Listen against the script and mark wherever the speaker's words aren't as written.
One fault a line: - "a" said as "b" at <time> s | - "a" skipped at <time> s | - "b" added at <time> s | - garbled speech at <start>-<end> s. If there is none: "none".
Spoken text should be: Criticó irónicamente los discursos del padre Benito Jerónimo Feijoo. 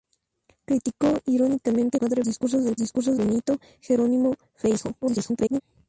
- "los" said as "padre" at 1.9 s
- "padre" said as "discursos" at 2.8 s
- garbled speech at 5.0-5.6 s